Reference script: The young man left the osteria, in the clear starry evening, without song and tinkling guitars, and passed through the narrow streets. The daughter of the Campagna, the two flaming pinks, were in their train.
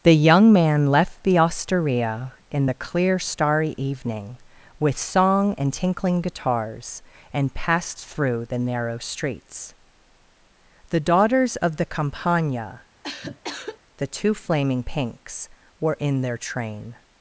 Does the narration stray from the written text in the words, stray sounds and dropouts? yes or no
yes